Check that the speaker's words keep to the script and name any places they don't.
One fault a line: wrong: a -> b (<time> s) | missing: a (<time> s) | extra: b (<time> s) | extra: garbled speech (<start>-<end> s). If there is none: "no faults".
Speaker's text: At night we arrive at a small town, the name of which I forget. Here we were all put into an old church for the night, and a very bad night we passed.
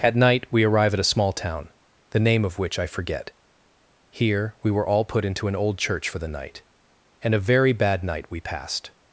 no faults